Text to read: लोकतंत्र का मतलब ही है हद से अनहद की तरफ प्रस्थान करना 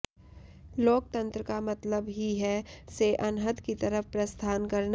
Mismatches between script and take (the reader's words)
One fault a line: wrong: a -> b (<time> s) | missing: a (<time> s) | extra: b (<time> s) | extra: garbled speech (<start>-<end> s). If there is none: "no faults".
missing: हद (2.6 s)